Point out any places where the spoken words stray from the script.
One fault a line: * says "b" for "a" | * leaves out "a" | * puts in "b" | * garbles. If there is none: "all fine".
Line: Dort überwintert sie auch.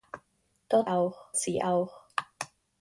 * says "auch" for "überwintert"